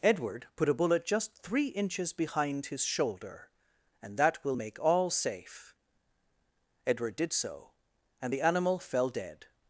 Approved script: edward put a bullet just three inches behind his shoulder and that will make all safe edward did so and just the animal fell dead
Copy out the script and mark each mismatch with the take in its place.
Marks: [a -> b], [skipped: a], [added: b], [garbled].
edward put a bullet just three inches behind his shoulder and that will make all safe edward did so and [skipped: just] the animal fell dead